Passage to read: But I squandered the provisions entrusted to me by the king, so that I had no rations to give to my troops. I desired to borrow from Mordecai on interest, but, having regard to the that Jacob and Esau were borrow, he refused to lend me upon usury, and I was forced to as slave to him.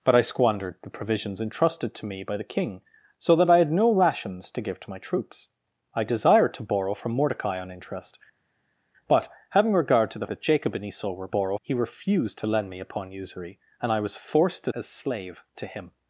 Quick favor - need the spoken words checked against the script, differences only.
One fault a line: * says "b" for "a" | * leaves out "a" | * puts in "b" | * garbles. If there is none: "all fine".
all fine